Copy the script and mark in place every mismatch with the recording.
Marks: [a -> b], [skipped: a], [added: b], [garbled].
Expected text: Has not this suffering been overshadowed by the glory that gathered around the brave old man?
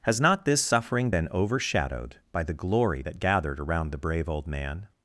Has not this suffering been overshadowed by the glory that gathered around the brave old man?